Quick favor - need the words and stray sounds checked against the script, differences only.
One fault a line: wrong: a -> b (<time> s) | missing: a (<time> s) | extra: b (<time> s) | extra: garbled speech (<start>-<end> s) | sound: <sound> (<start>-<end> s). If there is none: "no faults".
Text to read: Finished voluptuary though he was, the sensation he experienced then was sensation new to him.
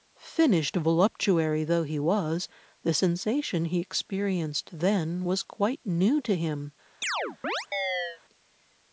wrong: sensation -> quite (5.4 s)
sound: chirp (7.0-8.2 s)